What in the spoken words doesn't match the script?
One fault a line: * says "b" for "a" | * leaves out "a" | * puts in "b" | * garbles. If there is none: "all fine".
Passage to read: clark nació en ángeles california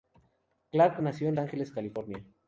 all fine